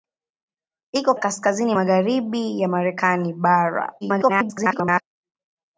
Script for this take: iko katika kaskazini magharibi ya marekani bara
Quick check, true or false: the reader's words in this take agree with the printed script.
false